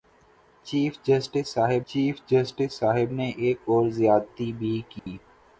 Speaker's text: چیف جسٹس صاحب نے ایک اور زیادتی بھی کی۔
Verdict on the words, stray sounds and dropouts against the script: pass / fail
fail